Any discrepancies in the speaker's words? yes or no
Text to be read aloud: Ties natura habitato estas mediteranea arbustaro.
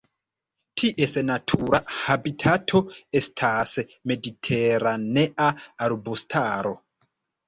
no